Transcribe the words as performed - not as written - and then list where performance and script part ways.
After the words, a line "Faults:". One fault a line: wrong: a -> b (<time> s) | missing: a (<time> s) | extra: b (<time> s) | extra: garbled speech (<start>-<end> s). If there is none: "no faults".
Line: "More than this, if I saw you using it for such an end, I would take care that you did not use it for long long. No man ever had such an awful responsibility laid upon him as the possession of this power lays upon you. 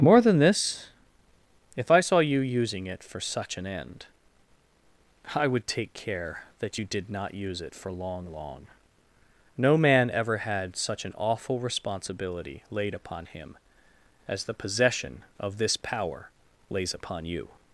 "More than this, if I saw you using it for such an end, I would take care that you did not use it for long long. No man ever had such an awful responsibility laid upon him as the possession of this power lays upon you.
Faults:
no faults